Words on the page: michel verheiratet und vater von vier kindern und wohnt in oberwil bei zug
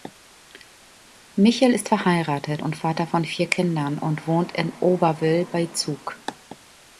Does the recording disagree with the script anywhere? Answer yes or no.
yes